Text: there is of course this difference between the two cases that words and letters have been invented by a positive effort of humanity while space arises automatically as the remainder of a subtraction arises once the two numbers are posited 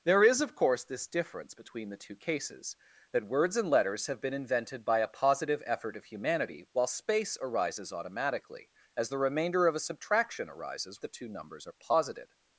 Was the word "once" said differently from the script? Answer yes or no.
yes